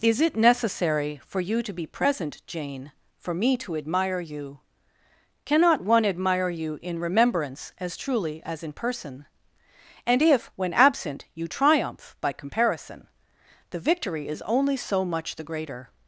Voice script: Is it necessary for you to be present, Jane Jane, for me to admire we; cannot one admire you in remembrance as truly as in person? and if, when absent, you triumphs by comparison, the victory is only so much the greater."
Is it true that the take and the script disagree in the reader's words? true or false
true